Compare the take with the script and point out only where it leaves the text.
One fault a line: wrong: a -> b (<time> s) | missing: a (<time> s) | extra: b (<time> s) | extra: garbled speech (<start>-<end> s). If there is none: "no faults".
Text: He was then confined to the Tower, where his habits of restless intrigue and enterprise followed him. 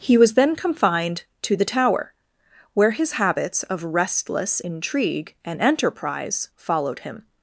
no faults